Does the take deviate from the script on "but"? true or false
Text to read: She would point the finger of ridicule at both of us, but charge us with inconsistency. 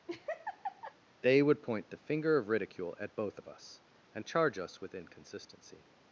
true